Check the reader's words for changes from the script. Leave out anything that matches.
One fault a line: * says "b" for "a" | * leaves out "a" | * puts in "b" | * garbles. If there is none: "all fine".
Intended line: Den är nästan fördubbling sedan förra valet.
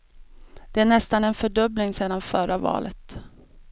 * says "Det" for "Den"
* puts in "en"